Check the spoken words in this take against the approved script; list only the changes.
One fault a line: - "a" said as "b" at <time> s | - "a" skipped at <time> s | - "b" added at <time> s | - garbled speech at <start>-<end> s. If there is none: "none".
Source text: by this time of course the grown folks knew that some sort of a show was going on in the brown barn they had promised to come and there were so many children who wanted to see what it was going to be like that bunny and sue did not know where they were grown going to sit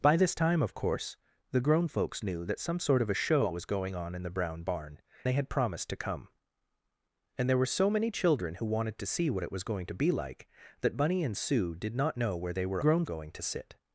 none